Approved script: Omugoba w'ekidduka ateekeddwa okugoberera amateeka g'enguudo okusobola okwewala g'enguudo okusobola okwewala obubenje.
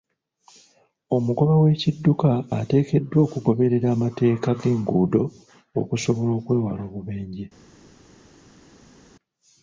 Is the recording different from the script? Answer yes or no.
yes